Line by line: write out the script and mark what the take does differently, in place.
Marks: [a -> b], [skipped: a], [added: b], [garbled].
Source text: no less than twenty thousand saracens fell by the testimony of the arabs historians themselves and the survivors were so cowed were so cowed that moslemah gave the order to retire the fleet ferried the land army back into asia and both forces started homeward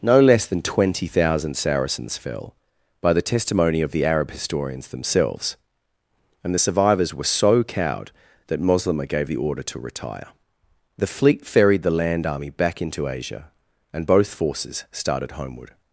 no less than twenty thousand saracens fell by the testimony of the [arabs -> arab] historians themselves and the survivors were so cowed [skipped: were so cowed] that moslemah gave the order to retire the fleet ferried the land army back into asia and both forces started homeward